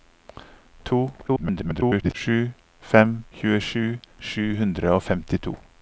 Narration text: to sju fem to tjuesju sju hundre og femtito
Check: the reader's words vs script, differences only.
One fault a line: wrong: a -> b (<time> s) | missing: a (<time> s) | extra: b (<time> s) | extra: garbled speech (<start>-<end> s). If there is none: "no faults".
extra: garbled speech (1.3-2.1 s)
missing: to (3.1 s)